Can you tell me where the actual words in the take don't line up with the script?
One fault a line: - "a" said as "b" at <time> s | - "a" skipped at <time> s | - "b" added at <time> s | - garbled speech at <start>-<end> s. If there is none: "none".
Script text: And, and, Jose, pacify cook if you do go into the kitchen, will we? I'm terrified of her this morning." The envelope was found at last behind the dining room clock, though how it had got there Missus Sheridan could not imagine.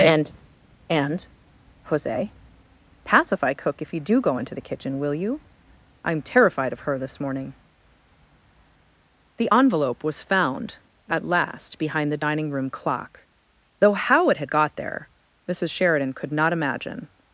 - "we" said as "you" at 5.1 s